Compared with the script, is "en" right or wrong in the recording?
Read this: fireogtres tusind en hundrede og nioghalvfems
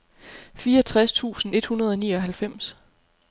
wrong